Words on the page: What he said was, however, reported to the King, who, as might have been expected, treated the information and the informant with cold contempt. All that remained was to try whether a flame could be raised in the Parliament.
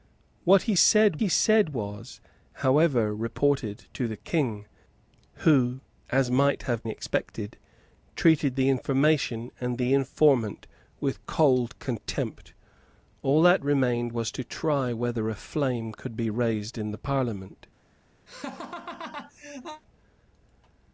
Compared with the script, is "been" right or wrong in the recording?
wrong